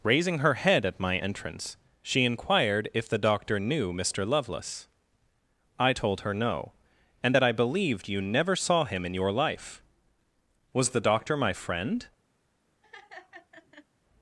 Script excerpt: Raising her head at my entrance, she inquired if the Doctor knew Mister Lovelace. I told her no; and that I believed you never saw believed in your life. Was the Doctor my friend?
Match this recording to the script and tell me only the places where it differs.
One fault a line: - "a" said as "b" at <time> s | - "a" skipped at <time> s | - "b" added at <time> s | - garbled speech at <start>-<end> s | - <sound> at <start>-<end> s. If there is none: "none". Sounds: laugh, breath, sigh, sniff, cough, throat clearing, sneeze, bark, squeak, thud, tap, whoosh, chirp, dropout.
- "believed" said as "him" at 8.8 s
- laugh at 12.8-13.9 s